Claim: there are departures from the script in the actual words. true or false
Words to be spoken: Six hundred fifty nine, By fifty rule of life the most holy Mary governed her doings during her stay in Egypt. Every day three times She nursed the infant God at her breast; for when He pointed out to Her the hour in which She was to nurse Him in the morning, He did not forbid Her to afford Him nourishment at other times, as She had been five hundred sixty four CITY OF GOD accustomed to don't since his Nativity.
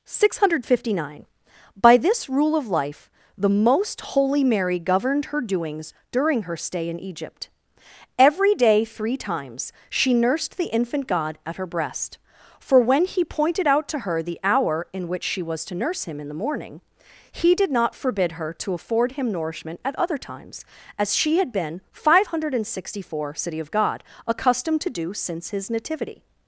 true